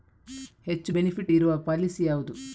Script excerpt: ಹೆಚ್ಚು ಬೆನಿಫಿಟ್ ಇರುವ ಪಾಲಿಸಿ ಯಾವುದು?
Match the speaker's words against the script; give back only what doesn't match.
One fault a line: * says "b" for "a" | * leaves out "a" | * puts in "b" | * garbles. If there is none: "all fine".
all fine